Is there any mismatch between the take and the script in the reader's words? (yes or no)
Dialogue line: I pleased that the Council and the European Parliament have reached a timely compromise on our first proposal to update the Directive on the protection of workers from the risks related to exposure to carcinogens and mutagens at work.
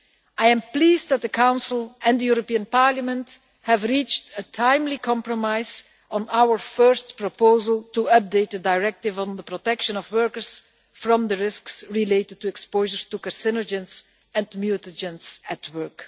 yes